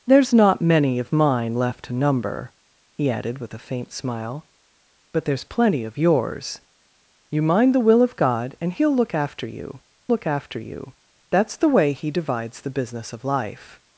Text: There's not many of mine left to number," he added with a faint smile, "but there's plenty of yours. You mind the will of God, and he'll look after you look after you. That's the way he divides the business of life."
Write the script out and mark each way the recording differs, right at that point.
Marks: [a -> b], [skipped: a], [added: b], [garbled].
There's not many of mine left to number," he added with a faint smile, "but there's plenty of yours. You mind the will of God, and he'll look after you look after you. That's the way he divides the business of life."